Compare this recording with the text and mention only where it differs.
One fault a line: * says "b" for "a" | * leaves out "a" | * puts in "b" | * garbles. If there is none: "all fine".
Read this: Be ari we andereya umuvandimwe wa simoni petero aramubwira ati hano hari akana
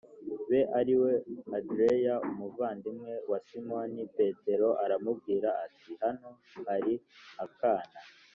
all fine